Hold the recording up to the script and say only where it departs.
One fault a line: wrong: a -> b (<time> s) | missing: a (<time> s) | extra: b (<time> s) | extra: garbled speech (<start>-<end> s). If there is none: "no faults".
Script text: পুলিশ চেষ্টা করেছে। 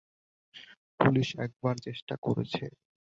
extra: একবার (1.4 s)